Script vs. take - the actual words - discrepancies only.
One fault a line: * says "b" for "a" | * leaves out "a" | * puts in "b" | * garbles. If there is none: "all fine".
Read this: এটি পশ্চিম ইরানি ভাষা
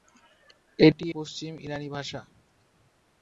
all fine